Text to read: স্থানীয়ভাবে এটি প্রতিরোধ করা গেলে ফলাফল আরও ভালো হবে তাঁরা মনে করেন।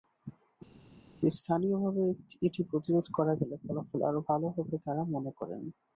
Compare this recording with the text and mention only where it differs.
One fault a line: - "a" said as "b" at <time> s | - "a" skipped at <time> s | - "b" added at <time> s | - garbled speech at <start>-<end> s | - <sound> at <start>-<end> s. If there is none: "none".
none